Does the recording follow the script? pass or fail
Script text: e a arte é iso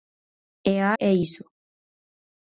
fail